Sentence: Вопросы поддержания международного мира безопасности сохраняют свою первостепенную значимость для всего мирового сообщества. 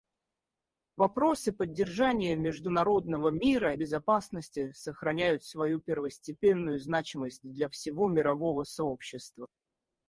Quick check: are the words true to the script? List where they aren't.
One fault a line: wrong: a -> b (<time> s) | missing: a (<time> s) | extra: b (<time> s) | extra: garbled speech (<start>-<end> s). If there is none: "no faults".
no faults